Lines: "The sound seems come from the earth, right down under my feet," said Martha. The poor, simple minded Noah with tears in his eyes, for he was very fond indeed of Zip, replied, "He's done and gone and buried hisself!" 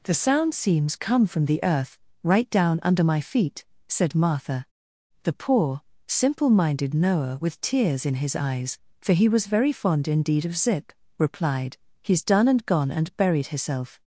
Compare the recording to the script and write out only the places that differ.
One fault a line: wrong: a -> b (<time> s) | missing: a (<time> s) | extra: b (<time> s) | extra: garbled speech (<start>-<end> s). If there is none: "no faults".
no faults